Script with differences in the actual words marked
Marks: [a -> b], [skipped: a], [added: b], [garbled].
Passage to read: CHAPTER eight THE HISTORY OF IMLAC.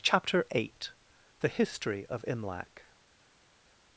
CHAPTER eight THE HISTORY OF IMLAC.